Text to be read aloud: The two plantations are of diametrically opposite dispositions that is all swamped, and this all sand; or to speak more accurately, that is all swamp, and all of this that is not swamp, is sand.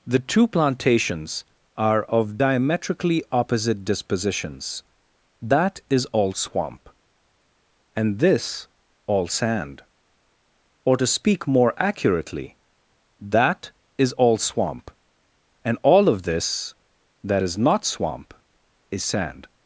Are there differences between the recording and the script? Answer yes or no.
yes